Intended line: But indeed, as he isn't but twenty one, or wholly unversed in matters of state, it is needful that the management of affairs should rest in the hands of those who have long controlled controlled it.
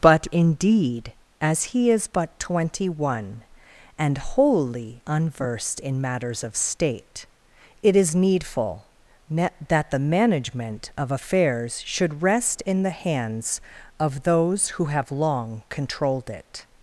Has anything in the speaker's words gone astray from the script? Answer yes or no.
yes